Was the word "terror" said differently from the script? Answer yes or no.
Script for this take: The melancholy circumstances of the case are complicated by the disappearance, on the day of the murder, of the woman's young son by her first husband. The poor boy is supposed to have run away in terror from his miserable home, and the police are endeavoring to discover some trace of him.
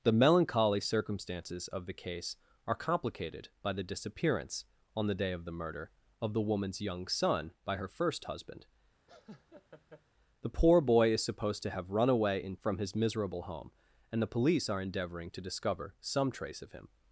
yes